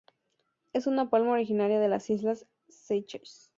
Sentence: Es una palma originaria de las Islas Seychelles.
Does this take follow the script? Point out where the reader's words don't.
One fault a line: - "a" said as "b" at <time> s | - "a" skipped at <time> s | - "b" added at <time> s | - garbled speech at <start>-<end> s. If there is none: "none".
none